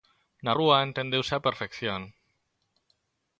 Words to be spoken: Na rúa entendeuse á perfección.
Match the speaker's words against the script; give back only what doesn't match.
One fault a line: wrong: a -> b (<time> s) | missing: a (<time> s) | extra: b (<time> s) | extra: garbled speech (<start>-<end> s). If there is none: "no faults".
no faults